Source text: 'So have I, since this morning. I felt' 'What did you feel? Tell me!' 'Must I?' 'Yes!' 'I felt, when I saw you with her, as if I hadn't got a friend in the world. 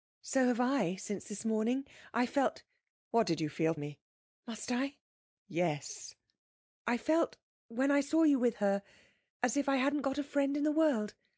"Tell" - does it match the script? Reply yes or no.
no